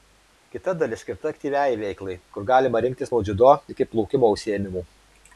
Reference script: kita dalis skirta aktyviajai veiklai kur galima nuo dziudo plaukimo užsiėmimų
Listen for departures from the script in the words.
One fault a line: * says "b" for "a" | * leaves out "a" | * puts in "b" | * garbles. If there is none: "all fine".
* puts in "rinktis"
* puts in "iki"